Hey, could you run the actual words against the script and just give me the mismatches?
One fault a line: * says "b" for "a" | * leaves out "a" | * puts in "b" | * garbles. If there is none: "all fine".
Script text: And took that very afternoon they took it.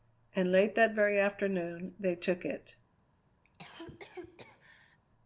* says "late" for "took"